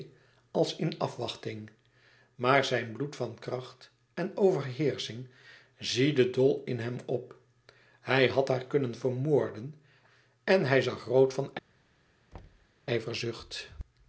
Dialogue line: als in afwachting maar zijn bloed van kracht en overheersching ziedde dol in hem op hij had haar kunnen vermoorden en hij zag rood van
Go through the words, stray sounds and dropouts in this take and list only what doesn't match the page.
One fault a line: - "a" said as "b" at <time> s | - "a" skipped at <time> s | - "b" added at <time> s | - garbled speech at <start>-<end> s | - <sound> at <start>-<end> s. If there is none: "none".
- thud at 12.3-12.7 s